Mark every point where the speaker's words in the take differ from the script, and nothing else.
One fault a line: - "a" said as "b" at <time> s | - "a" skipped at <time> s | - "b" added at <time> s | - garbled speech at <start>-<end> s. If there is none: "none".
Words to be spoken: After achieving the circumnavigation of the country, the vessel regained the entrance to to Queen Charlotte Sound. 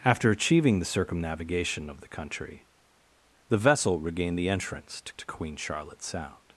none